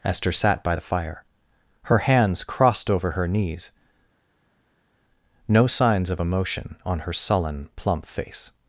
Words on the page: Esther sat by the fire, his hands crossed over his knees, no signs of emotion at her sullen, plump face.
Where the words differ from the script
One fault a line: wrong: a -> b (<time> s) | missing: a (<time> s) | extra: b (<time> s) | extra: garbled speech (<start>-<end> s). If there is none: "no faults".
wrong: his -> her (1.8 s)
wrong: his -> her (3.1 s)
wrong: at -> on (6.9 s)